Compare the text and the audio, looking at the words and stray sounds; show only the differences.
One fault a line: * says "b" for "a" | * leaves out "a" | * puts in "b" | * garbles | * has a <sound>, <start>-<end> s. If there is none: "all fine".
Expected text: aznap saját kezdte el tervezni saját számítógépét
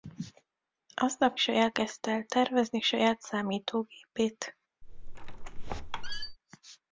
* has a squeak, 4.8-6.4 s